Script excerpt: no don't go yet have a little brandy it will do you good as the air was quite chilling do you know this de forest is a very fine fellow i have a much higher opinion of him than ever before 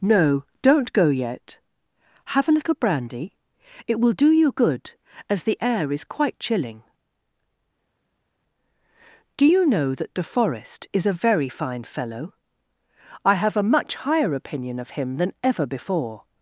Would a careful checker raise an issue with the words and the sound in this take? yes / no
yes